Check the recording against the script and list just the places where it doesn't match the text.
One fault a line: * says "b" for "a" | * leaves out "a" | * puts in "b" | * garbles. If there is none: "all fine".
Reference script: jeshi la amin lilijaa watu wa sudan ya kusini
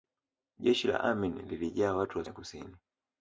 * leaves out "sudan"